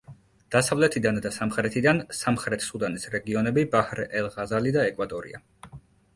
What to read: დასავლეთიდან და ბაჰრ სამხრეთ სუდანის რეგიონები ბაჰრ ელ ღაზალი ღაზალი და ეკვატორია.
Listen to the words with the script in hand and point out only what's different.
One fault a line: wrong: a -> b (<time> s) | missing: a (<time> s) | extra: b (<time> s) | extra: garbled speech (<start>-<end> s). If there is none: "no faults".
wrong: ბაჰრ -> სამხრეთიდან (1.4 s)
missing: ღაზალი (4.8 s)